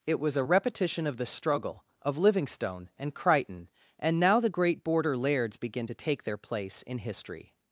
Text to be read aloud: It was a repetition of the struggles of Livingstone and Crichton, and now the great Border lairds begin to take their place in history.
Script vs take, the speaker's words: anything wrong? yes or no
yes